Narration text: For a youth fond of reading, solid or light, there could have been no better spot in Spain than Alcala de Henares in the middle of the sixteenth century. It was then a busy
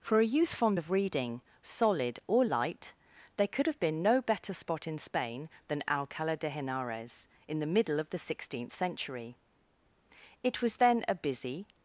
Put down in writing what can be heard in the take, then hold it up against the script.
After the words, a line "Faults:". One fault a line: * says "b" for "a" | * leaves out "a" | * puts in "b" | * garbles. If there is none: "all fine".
For a youth fond of reading, solid or light, there could have been no better spot in Spain than Alcala de Henares in the middle of the sixteenth century. It was then a busy
Faults:
all fine